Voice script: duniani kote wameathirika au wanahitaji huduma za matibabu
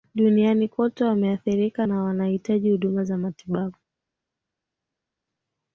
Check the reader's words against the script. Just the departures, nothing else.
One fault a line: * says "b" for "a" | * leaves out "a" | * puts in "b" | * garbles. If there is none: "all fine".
* says "na" for "au"